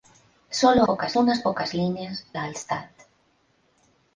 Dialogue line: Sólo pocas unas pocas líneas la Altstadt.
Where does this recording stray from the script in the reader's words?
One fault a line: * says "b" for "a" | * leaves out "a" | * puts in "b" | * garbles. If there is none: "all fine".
all fine